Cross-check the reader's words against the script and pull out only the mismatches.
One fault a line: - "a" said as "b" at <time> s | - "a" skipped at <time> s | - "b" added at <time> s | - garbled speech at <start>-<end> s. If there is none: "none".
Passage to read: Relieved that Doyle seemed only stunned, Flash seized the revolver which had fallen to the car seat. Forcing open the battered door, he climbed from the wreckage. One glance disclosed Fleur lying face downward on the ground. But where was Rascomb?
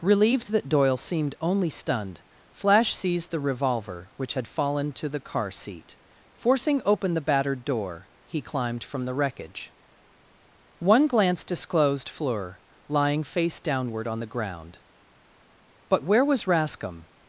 none